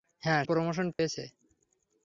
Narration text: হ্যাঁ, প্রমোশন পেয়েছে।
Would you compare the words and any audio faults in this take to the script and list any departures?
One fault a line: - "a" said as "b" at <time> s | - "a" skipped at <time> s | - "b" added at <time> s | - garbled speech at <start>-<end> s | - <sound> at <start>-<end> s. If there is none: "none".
- dropout at 0.9-1.0 s